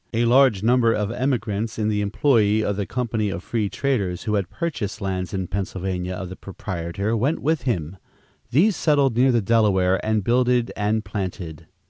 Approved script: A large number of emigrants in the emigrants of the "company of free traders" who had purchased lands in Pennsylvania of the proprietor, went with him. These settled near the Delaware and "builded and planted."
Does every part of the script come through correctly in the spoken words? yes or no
no